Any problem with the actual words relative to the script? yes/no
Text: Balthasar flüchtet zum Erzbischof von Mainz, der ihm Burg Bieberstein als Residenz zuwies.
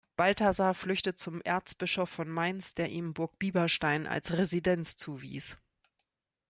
no